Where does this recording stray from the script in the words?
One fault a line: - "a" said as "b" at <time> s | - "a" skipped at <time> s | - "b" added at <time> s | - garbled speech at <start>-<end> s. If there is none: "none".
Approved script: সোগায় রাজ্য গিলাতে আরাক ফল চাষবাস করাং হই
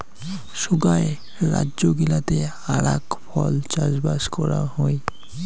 none